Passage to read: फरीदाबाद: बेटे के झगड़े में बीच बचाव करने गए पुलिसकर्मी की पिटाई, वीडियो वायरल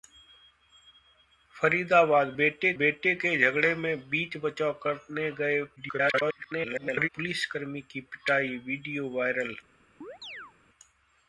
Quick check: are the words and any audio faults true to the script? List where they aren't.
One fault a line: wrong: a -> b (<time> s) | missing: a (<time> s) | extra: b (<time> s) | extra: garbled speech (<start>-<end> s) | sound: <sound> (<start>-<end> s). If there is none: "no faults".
extra: बेटे (2.8 s)
extra: garbled speech (5.8-7.1 s)
sound: chirp (10.0-10.5 s)